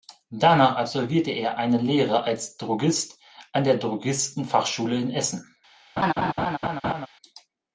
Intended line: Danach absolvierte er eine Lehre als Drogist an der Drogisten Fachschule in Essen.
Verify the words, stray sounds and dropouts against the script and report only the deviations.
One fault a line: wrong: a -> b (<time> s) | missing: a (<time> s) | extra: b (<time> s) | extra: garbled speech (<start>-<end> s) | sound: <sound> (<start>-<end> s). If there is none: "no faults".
sound: laugh (6.0-7.1 s)